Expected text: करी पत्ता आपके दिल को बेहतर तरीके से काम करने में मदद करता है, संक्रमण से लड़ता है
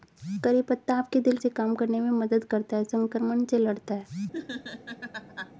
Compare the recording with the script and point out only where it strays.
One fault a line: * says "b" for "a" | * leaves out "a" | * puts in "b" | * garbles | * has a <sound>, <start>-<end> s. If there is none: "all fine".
* leaves out "को बेहतर तरीके"
* has a laugh, 4.3-5.5 s